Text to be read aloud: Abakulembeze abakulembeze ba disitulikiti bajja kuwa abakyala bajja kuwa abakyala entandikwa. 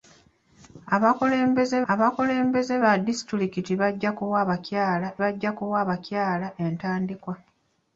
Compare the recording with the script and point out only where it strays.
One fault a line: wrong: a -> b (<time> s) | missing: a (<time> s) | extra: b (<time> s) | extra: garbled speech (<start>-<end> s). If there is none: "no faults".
no faults